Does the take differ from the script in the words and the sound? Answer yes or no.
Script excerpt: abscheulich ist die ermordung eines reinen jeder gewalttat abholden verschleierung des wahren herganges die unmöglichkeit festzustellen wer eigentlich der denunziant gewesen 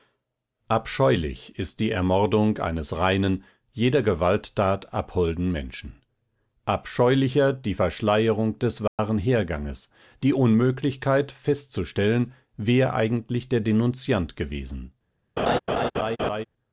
yes